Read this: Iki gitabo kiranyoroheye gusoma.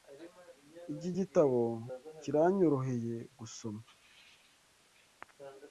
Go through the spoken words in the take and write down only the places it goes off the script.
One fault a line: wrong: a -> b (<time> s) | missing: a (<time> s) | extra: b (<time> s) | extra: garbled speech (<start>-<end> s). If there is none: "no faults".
no faults